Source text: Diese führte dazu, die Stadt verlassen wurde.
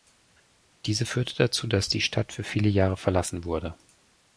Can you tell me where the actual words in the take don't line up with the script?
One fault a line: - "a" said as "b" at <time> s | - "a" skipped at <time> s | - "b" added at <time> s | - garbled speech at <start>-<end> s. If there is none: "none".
- "dass" added at 1.7 s
- "für viele Jahre" added at 2.3 s